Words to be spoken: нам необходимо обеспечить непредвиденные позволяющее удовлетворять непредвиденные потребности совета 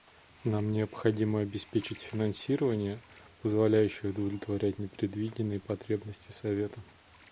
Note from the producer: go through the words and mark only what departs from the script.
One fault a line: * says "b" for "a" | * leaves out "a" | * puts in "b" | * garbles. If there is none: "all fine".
* says "финансирование" for "непредвиденные"